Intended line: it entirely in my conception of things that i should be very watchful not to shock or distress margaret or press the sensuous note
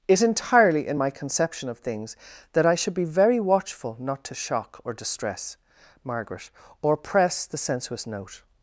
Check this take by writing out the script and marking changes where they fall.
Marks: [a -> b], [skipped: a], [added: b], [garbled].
it entirely in my conception of things that i should be very watchful not to shock or distress margaret or press the sensuous note